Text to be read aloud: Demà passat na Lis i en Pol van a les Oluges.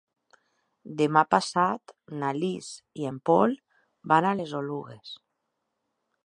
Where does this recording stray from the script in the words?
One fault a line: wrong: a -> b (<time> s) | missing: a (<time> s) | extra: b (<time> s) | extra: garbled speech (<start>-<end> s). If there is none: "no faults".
no faults